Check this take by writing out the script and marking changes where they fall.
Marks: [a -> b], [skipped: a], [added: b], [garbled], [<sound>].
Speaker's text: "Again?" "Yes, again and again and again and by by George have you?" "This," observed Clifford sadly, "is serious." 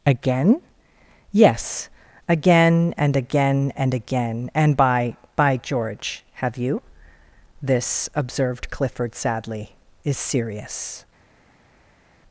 "Again?" "Yes, again and again and again and by by George have you?" "This," observed Clifford sadly, "is serious."